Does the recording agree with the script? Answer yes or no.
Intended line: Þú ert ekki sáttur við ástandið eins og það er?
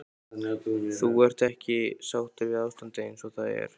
yes